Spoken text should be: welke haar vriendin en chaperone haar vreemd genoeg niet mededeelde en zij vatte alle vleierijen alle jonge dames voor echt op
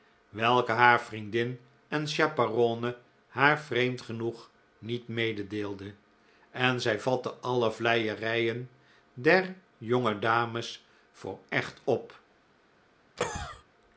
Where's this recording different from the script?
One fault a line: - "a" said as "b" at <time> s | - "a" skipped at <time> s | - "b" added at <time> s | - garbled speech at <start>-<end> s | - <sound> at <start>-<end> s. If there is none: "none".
- "alle" said as "der" at 9.1 s
- cough at 13.2-13.6 s